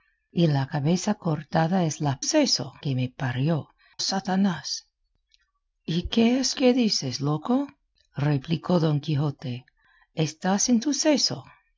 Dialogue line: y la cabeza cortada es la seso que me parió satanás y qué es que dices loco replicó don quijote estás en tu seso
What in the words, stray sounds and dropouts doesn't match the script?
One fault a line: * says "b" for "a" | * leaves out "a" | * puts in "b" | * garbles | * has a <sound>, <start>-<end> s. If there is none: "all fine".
all fine